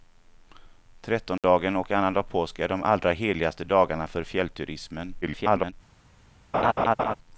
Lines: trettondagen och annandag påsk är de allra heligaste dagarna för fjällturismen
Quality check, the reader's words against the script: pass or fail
fail